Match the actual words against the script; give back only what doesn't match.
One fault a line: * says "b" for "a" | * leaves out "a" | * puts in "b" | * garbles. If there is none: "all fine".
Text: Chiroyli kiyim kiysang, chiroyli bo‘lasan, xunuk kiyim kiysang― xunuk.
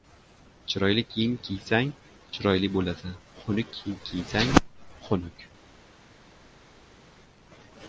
all fine